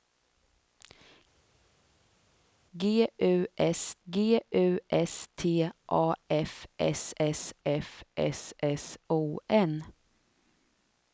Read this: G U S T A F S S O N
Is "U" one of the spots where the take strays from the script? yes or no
no